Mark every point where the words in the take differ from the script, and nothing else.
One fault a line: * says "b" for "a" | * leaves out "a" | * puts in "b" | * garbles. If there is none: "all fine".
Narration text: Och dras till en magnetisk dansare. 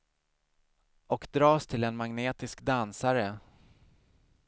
all fine